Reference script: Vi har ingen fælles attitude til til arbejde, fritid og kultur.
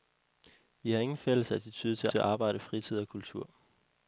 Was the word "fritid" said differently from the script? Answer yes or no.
no